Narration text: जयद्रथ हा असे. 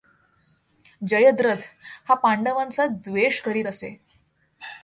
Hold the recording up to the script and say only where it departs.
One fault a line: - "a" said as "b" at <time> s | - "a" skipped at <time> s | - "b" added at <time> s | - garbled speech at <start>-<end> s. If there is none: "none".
- "पांडवांचा द्वेष करीत" added at 2.1 s